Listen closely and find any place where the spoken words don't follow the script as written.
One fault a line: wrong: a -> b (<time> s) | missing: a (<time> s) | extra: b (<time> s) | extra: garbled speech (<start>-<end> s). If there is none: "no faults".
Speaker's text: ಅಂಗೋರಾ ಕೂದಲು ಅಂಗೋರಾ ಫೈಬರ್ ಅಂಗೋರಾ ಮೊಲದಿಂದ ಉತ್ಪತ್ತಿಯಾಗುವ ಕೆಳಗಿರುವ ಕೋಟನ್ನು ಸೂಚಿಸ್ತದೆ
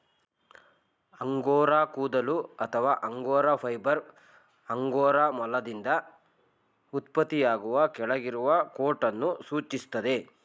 extra: ಅಥವಾ (2.4 s)